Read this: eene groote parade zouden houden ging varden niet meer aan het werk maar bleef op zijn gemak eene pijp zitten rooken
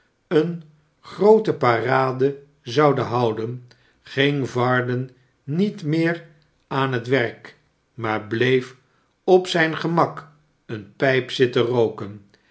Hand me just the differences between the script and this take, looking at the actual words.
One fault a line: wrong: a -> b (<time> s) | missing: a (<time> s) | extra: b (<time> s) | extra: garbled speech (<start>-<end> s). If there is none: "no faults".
no faults